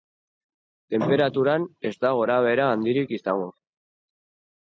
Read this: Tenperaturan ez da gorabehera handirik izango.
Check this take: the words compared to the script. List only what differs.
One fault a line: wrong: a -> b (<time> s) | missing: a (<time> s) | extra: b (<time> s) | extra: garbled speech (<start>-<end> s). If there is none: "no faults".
no faults